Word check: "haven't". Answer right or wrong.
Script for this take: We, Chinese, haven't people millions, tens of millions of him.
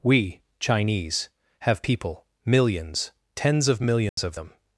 wrong